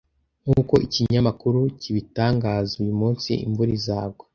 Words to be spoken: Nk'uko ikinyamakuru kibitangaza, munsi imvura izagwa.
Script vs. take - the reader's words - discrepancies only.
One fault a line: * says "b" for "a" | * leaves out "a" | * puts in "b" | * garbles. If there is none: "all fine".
* puts in "uyu"